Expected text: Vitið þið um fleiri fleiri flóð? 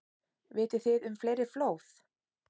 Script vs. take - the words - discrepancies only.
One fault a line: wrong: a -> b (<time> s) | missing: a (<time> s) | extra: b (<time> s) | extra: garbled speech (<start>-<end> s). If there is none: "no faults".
missing: fleiri (1.5 s)